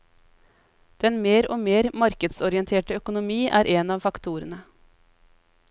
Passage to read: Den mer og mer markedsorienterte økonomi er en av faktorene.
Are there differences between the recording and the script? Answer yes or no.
no